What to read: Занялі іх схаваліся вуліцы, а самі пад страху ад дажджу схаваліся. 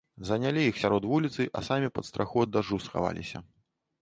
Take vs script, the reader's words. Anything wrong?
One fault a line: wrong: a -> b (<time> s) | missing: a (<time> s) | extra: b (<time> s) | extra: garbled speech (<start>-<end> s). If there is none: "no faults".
wrong: схаваліся -> сярод (0.8 s)